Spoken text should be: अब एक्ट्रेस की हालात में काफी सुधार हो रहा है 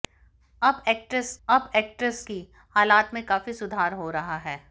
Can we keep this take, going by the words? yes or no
no